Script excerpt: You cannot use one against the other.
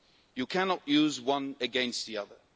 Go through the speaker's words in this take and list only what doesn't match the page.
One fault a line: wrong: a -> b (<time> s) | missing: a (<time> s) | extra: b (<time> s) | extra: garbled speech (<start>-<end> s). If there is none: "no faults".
no faults